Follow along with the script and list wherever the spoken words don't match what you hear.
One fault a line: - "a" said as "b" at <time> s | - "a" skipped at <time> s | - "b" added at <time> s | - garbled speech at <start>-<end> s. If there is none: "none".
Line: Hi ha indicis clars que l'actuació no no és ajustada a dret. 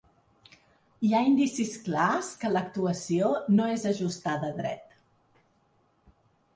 - "no" skipped at 3.7 s